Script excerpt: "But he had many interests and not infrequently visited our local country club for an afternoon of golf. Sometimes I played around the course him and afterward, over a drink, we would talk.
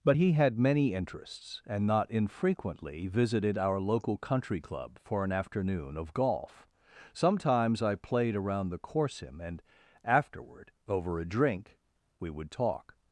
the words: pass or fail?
pass